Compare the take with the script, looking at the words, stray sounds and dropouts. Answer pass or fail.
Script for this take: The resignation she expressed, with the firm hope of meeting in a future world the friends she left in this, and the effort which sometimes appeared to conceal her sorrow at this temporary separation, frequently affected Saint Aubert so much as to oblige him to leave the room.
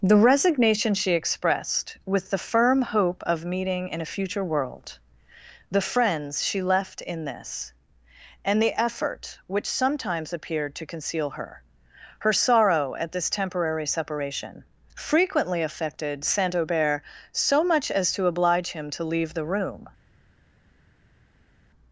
fail